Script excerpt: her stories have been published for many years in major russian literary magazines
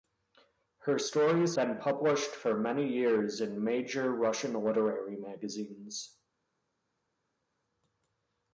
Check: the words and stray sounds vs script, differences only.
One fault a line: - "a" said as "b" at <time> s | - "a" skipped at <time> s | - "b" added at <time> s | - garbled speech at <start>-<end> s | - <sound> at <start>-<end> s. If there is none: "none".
- "have" skipped at 1.6 s